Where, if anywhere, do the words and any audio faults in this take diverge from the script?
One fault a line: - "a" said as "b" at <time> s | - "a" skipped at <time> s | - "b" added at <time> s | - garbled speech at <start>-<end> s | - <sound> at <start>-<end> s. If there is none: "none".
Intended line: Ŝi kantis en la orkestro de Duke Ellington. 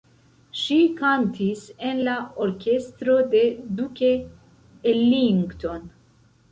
none